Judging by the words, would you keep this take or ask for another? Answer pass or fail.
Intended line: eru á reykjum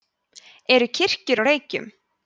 fail